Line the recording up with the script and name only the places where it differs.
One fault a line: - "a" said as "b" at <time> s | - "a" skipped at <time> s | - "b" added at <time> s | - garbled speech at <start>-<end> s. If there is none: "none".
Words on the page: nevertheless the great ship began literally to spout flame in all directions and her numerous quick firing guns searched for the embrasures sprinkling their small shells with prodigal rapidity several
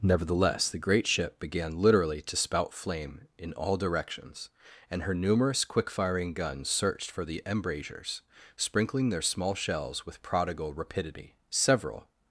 none